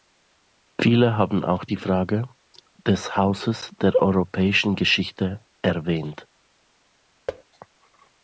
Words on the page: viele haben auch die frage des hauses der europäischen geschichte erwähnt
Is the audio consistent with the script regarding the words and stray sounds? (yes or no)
no